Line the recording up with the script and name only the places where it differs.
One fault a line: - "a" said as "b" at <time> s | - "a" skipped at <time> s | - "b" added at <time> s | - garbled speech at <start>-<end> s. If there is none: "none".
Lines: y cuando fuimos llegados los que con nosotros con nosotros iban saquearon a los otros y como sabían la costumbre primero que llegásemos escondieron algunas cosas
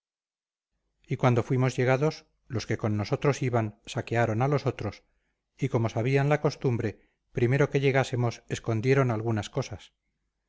- "con nosotros" skipped at 3.4 s